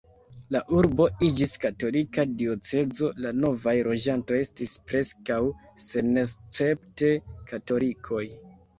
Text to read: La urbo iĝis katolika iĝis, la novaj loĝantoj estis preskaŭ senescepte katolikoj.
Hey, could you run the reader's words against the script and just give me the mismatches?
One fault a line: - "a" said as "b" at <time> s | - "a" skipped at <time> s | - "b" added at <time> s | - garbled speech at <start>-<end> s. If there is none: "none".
- "iĝis" said as "diocezo" at 2.4 s